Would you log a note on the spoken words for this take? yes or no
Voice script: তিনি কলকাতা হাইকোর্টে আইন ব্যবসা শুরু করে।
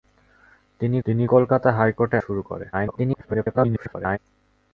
yes